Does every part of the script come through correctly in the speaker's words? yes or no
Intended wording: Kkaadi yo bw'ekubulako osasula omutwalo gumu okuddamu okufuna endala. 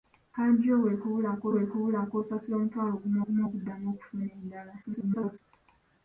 no